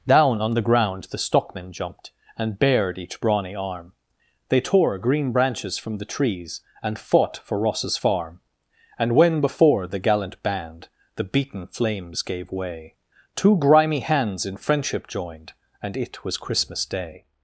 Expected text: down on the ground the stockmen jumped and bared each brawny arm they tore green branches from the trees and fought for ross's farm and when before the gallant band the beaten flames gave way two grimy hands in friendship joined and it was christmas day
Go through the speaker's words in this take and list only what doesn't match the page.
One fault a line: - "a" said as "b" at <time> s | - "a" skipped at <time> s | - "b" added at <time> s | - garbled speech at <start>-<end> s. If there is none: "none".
none